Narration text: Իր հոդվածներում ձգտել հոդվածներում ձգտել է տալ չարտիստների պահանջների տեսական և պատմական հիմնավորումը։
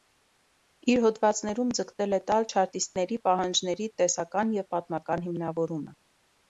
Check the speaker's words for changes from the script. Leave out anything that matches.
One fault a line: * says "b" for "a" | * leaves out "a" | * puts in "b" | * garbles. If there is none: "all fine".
* leaves out "հոդվածներում ձգտել"